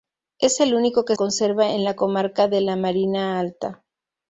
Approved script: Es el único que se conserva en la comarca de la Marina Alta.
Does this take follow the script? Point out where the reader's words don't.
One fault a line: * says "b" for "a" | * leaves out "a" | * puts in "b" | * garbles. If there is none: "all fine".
* leaves out "se"